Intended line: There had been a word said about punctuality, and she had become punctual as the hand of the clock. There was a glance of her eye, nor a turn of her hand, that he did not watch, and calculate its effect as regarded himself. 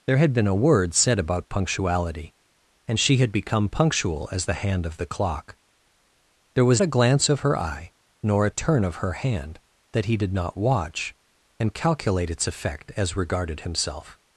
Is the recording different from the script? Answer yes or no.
no